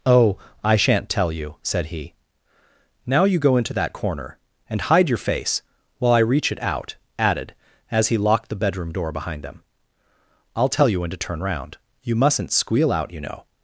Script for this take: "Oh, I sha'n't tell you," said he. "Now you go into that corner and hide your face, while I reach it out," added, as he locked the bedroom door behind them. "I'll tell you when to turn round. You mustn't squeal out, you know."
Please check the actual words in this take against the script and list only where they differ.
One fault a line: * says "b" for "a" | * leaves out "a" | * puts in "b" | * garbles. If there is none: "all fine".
all fine